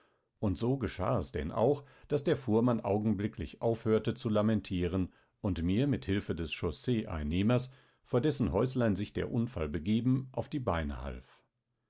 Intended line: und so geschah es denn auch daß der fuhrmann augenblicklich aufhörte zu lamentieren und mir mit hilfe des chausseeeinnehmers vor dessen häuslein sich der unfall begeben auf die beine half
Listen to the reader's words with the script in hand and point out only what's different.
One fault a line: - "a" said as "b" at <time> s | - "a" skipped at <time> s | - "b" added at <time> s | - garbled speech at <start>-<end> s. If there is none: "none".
none